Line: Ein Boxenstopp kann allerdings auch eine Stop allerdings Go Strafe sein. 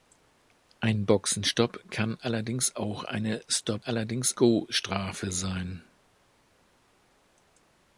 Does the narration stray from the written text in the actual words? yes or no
no